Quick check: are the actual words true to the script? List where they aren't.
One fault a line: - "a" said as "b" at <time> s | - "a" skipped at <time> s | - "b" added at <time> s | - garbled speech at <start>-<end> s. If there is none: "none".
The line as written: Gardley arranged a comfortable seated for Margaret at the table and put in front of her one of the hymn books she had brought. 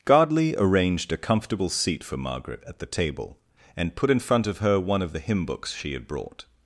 - "seated" said as "seat" at 1.7 s